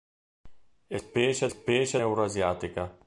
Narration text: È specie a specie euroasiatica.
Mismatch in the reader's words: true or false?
false